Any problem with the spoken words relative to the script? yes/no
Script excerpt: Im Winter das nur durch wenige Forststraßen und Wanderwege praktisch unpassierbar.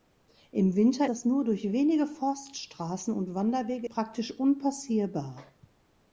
no